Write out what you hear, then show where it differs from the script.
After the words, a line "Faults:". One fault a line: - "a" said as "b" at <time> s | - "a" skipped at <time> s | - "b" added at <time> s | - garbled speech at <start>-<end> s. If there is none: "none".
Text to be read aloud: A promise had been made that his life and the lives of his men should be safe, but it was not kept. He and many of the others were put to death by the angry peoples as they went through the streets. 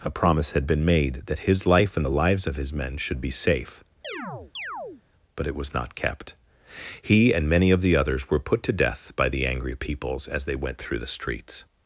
A promise had been made that his life and the lives of his men should be safe, but it was not kept. He and many of the others were put to death by the angry peoples as they went through the streets.
Faults:
none